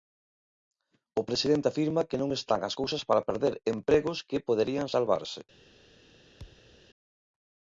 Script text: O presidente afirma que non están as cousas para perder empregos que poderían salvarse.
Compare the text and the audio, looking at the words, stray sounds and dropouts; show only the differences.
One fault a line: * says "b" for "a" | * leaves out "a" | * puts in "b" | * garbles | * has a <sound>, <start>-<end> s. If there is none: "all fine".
* has a thud, 6.4-6.8 s